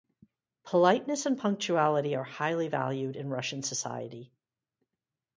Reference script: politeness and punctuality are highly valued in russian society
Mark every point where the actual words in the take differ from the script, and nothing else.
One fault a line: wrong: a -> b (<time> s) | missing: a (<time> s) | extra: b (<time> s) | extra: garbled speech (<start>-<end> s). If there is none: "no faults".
no faults